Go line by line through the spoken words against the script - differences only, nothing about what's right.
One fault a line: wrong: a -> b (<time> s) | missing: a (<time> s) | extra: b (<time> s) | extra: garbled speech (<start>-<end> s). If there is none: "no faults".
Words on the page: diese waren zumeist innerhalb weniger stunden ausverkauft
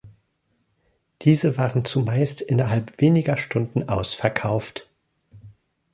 no faults